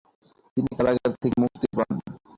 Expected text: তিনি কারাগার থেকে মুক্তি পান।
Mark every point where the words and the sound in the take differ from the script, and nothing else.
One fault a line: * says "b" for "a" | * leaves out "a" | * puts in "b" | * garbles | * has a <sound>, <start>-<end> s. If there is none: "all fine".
all fine